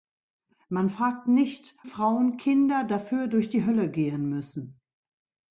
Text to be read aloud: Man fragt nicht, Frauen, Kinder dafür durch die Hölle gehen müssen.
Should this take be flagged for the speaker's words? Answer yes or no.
no